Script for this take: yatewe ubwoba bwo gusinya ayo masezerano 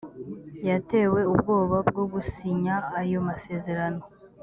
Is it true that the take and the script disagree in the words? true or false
false